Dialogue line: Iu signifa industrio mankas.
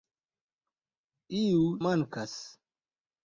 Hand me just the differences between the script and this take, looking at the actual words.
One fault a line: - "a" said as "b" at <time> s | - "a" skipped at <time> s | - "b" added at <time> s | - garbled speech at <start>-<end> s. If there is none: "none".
- "signifa industrio" skipped at 1.6 s